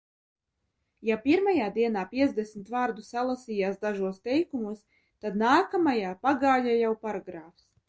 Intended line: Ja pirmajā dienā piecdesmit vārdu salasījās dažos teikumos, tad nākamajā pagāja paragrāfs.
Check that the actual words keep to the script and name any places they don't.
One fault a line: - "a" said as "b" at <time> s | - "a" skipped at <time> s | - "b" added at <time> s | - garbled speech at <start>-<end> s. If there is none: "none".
- "jau" added at 6.8 s